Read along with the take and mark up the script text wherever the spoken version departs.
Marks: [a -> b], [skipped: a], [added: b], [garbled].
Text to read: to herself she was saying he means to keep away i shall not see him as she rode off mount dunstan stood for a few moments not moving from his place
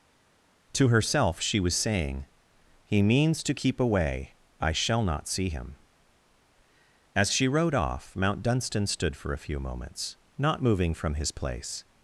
to herself she was saying he means to keep away i shall not see him as she rode off mount dunstan stood for a few moments not moving from his place